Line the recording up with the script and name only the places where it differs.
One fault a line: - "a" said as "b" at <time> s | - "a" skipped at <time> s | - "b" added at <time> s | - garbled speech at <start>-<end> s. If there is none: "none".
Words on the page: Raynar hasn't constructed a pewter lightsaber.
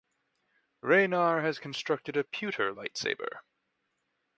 - "hasn't" said as "has" at 1.4 s